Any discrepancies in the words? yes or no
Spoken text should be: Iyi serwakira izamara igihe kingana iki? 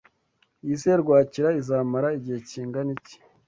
no